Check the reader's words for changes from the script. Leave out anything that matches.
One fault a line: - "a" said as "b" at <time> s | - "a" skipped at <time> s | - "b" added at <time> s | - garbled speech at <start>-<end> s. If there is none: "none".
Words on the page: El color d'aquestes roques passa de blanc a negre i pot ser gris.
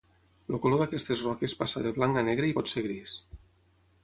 none